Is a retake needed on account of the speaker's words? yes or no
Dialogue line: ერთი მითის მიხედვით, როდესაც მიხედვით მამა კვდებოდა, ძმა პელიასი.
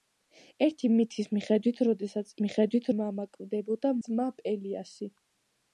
no